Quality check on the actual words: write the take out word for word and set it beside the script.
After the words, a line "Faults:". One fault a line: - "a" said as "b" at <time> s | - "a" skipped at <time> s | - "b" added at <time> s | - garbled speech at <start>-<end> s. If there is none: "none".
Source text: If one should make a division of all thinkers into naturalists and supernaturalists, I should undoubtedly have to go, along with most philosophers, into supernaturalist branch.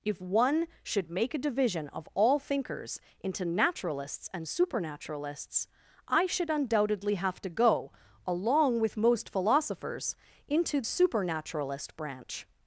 If one should make a division of all thinkers into naturalists and supernaturalists, I should undoubtedly have to go, along with most philosophers, into supernaturalist branch.
Faults:
none